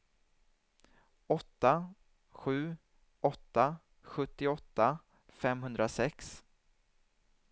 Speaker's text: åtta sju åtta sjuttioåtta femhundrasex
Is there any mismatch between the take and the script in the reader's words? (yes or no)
no